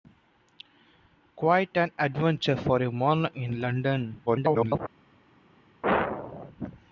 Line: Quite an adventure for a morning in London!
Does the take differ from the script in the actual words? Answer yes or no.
yes